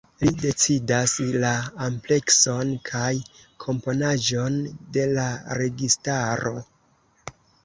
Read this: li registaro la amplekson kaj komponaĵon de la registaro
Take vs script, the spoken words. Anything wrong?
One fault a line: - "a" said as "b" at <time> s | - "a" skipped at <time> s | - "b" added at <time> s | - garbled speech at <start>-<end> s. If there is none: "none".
- "registaro" said as "decidas" at 0.4 s